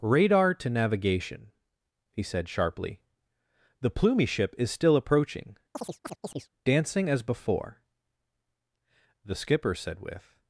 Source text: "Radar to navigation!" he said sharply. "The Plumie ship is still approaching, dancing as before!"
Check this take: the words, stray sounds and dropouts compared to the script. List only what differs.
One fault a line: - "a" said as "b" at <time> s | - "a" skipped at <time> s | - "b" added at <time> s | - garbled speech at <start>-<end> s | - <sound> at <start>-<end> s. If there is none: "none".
- chirp at 5.7-6.5 s
- "The skipper said with" added at 9.2 s